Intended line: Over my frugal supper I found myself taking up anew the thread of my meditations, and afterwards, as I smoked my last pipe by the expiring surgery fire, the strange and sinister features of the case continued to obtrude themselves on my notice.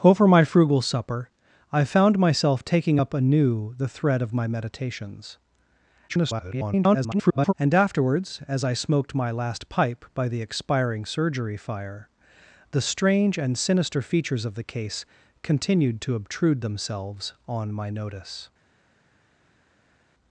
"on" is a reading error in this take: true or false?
false